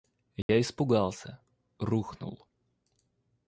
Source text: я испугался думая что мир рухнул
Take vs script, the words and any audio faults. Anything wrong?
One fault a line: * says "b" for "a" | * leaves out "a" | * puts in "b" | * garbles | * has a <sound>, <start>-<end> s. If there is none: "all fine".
* has a dropout, 0.4-0.5 s
* leaves out "думая что мир"